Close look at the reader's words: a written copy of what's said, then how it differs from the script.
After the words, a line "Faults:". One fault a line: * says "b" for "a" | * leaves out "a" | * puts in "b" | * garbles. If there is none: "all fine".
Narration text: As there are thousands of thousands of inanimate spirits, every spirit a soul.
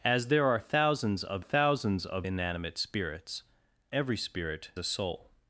As there are thousands of thousands of inanimate spirits, every spirit a soul.
Faults:
all fine